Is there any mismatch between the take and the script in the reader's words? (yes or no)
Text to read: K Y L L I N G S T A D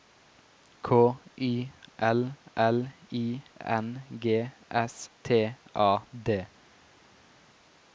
no